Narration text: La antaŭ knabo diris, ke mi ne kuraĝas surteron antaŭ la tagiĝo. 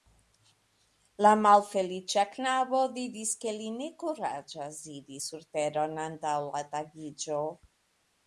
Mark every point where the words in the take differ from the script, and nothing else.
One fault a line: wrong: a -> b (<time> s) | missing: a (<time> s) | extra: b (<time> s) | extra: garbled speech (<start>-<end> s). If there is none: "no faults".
wrong: antaŭ -> malfeliĉa (1.4 s)
wrong: mi -> li (3.6 s)
extra: iri (4.9 s)